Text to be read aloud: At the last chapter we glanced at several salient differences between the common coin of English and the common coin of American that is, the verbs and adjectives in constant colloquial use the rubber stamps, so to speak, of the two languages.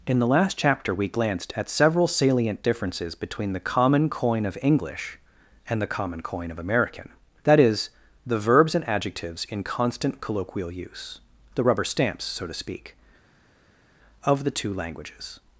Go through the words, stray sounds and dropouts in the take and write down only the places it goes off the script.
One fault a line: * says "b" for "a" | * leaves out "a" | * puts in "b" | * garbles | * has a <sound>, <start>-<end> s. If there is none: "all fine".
* says "In" for "At"